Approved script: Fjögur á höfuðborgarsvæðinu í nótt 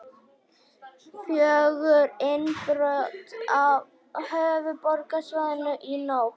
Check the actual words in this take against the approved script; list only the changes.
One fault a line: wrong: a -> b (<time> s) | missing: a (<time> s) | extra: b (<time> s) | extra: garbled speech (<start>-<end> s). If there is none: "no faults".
extra: innbrot (2.3 s)